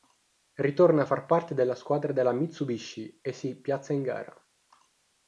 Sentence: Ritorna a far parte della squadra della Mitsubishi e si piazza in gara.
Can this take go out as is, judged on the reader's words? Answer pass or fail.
pass